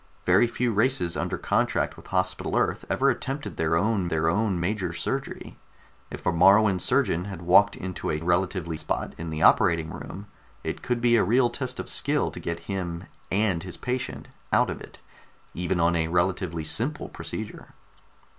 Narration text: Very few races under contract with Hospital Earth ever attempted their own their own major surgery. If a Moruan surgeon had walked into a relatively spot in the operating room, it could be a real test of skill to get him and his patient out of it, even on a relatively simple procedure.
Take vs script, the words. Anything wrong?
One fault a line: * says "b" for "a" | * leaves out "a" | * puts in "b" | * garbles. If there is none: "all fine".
all fine